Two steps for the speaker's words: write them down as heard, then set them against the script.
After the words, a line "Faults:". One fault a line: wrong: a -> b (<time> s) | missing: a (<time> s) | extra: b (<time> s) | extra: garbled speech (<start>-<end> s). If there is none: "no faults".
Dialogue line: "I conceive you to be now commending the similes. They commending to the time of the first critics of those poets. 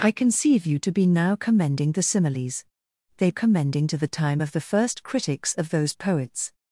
"I conceive you to be now commending the similes. They commending to the time of the first critics of those poets.
Faults:
no faults